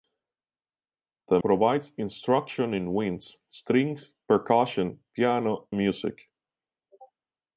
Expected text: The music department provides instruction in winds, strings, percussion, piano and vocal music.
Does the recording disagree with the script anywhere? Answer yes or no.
yes